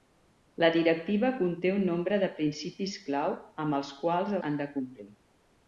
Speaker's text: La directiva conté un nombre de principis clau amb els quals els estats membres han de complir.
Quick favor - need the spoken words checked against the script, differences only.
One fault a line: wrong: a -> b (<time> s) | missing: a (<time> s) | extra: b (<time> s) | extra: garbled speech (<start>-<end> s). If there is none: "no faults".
missing: els estats membres (4.4 s)